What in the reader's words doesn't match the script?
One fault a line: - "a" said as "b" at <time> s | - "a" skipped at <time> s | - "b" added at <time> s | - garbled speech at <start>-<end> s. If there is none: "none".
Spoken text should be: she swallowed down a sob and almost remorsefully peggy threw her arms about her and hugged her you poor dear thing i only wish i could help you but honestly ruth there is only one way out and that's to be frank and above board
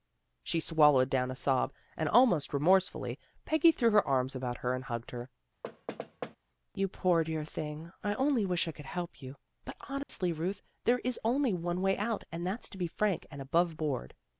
none